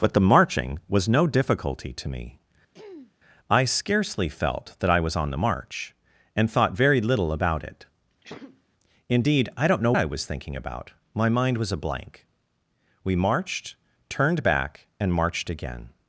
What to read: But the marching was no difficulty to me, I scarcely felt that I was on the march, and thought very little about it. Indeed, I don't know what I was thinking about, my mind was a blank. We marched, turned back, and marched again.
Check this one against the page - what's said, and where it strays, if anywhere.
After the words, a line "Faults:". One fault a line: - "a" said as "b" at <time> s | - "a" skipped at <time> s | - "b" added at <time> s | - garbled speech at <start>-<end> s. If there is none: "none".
But the marching was no difficulty to me, I scarcely felt that I was on the march, and thought very little about it. Indeed, I don't know I was thinking about, my mind was a blank. We marched, turned back, and marched again.
Faults:
- "what" skipped at 9.9 s